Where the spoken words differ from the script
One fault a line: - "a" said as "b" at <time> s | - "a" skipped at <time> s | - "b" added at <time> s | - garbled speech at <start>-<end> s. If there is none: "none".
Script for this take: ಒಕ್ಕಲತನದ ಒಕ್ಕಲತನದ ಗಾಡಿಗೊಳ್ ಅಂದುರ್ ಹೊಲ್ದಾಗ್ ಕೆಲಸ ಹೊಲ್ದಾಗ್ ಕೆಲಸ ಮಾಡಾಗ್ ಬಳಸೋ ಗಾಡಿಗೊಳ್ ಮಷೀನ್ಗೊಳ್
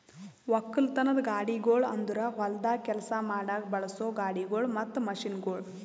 - "ಒಕ್ಕಲತನದ" skipped at 1.2 s
- "ಹೊಲ್ದಾಗ್ ಕೆಲಸ" skipped at 3.1 s
- "ಮತ್ತ" added at 4.8 s